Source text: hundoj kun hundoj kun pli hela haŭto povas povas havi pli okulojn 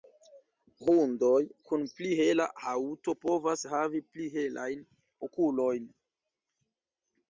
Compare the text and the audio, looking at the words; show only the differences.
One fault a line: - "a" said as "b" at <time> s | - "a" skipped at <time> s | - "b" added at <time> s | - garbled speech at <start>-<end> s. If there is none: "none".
- "hundoj kun" skipped at 1.9 s
- "povas" skipped at 3.6 s
- "helajn" added at 4.4 s